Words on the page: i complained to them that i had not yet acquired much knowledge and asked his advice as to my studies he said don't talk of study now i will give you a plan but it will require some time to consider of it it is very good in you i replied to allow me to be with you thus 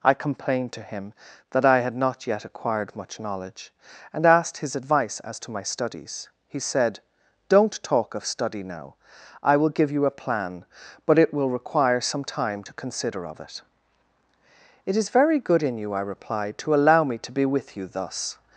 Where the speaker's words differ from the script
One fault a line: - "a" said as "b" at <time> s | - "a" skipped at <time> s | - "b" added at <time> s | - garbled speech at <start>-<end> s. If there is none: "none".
- "them" said as "him" at 0.8 s